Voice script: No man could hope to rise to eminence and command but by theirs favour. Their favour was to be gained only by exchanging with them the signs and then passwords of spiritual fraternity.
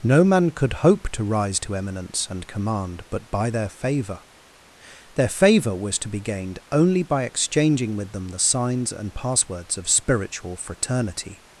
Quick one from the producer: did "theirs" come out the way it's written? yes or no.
no